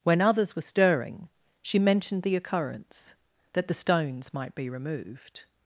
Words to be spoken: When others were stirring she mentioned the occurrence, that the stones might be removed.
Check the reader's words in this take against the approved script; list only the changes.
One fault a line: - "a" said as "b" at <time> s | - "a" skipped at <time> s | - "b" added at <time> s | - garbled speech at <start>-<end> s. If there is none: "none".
none